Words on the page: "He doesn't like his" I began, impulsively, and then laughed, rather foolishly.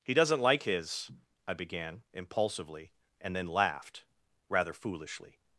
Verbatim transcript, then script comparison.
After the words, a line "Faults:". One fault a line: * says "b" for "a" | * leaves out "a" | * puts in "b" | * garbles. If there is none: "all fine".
"He doesn't like his" I began, impulsively, and then laughed, rather foolishly.
Faults:
all fine